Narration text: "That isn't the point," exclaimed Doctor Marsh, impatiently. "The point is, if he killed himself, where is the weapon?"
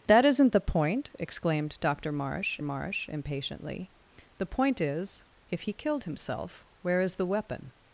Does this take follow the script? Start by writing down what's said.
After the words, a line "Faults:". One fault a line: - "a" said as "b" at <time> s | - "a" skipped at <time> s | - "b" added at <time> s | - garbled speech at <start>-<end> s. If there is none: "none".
"That isn't the point," exclaimed Doctor Marsh Marsh, impatiently. "The point is, if he killed himself, where is the weapon?"
Faults:
- "Marsh" added at 2.6 s